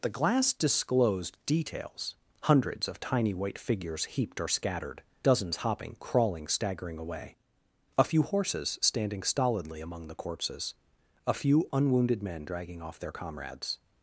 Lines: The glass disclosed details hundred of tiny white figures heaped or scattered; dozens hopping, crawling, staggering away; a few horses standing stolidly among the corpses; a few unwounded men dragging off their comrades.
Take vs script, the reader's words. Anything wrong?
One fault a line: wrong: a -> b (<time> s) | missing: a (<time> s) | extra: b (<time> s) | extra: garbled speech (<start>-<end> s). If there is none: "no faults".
wrong: hundred -> hundreds (2.4 s)